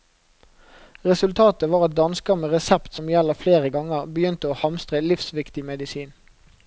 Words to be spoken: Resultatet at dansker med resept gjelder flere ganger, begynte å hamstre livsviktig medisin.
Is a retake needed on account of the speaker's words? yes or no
yes